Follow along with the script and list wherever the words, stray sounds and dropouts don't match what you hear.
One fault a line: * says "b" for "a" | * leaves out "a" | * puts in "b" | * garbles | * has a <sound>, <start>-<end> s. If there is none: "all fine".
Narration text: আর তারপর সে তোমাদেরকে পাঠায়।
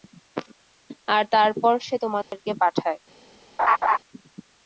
* has a dropout, 2.2-2.3 s
* has a laugh, 3.6-4.0 s